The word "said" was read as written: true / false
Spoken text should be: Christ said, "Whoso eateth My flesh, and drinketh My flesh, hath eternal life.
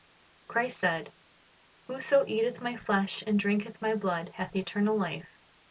true